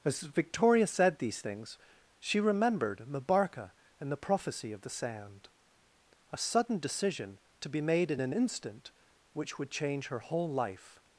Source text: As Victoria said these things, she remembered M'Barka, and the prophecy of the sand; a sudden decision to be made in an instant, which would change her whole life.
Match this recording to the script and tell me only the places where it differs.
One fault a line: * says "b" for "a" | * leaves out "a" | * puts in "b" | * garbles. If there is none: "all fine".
all fine